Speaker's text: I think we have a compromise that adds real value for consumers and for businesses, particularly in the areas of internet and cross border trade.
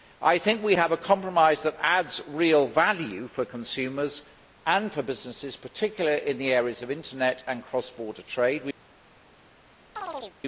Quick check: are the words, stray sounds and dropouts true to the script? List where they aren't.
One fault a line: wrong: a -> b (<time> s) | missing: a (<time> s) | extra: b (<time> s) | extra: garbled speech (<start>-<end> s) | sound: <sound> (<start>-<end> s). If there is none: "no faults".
sound: chirp (10.0-10.4 s)